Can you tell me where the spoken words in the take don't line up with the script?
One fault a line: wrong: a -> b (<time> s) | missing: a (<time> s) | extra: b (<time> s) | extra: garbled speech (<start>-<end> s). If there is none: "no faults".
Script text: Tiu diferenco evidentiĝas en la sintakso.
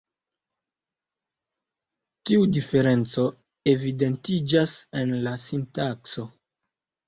no faults